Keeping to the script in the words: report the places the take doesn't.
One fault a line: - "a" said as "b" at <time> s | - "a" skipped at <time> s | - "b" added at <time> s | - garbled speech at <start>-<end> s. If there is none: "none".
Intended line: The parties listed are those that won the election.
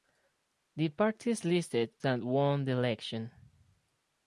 - "are those" skipped at 1.9 s